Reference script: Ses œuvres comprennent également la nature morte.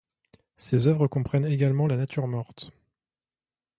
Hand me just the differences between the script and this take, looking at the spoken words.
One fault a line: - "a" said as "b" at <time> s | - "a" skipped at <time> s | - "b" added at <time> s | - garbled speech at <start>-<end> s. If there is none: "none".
none